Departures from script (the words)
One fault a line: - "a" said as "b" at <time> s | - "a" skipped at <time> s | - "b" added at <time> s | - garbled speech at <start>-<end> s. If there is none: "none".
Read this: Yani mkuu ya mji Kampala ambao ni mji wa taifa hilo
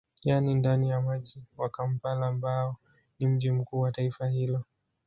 - "mkuu" said as "ndani" at 0.5 s
- "wa" added at 1.6 s
- "mkuu" added at 3.5 s